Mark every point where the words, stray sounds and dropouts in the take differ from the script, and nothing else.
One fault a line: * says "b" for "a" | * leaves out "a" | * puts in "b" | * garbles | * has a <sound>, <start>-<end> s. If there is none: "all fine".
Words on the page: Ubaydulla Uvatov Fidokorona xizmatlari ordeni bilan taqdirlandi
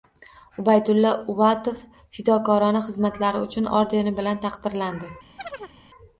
* puts in "uchun"
* has a chirp, 5.4-5.8 s